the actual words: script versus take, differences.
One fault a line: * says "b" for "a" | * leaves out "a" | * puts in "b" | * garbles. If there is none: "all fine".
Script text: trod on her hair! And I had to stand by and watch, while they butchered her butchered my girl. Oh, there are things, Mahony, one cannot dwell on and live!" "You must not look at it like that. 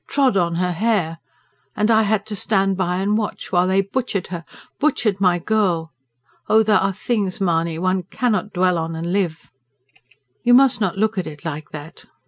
all fine